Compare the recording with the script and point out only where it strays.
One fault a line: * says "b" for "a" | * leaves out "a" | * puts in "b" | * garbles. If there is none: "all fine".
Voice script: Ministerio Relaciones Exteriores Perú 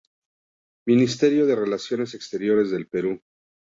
* puts in "de"
* puts in "del"